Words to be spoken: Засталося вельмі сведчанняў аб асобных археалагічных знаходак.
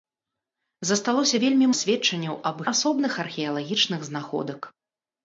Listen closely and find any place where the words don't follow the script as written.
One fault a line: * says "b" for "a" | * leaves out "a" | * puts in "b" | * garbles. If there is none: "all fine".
all fine